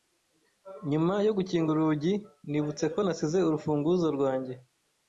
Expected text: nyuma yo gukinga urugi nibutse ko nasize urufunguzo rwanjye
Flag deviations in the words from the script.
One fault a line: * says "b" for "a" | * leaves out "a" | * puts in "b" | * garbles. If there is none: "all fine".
all fine